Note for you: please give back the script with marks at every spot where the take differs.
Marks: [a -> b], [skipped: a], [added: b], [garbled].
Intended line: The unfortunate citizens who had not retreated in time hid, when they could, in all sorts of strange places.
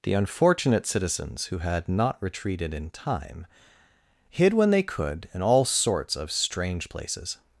The unfortunate citizens who had not retreated in time hid, when they could, in all sorts of strange places.